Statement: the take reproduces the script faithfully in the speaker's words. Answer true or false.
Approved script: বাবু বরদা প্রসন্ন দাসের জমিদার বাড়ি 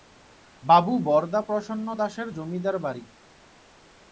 true